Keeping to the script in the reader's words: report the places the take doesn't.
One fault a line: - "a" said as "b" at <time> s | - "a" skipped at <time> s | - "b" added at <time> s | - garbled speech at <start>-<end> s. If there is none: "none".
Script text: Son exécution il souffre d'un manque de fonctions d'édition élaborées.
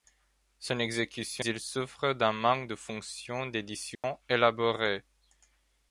none